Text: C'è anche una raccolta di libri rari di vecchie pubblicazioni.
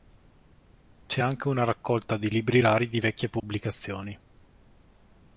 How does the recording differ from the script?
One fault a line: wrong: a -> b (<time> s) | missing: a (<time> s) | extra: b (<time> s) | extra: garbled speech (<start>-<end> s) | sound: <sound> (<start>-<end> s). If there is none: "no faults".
sound: dropout (3.4-3.4 s)